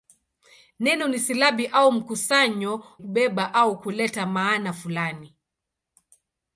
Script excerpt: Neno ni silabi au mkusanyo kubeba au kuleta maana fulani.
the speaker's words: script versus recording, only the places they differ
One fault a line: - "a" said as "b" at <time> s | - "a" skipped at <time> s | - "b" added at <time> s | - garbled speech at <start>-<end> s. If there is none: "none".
none